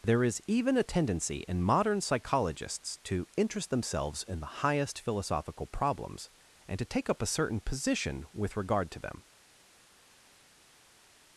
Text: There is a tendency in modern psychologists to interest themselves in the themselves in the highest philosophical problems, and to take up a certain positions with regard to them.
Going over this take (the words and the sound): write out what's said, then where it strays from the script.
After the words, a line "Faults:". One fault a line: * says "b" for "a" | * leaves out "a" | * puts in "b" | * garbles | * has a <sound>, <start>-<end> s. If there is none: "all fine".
There is even a tendency in modern psychologists to interest themselves in the highest philosophical problems, and to take up a certain position with regard to them.
Faults:
* puts in "even"
* leaves out "themselves in the"
* says "position" for "positions"